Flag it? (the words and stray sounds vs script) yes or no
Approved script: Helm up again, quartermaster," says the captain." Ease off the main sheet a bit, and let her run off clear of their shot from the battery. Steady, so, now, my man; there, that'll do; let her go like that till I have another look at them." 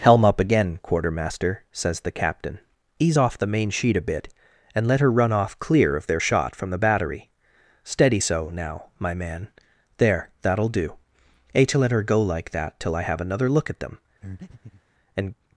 yes